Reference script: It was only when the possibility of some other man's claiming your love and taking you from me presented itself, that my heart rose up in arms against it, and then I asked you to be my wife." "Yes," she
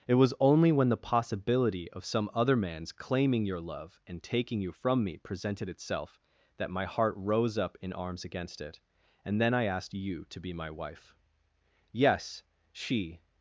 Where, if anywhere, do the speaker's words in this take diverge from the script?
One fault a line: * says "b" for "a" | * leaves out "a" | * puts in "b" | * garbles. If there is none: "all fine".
all fine